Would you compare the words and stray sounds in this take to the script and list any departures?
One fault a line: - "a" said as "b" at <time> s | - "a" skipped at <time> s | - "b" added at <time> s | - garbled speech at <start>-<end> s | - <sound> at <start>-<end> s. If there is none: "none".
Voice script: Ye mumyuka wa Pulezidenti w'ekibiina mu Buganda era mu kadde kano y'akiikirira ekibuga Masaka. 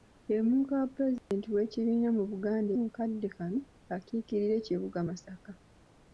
- dropout at 1.2-1.3 s
- "era" skipped at 2.7 s